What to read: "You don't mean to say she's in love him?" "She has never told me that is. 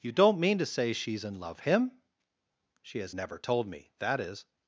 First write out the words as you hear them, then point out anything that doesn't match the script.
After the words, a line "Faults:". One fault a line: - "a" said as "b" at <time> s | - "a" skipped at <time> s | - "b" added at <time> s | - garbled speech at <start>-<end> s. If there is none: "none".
"You don't mean to say she's in love him?" "She has never told me that is.
Faults:
none